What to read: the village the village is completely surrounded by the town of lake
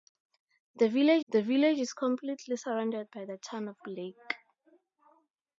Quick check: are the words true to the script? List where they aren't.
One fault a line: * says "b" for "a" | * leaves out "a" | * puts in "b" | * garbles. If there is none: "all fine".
all fine